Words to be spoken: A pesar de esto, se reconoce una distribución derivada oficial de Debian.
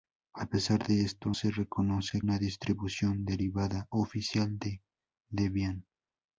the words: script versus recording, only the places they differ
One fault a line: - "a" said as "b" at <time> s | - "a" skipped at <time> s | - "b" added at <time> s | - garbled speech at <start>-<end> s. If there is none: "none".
none